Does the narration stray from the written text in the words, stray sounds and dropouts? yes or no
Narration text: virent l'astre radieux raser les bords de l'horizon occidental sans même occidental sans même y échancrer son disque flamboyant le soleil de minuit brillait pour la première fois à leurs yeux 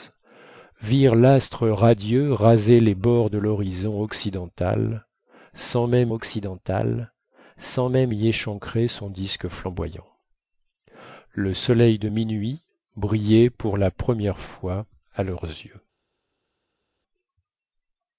no